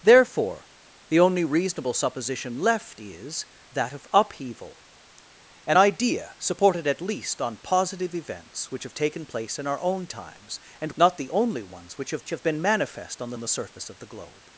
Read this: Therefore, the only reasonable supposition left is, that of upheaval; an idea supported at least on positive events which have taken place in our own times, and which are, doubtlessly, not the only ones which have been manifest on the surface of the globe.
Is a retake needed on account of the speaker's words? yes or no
yes